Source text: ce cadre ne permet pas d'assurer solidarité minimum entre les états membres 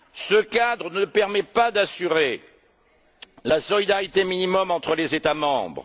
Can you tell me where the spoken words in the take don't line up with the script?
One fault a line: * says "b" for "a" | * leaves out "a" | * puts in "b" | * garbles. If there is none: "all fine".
* puts in "la"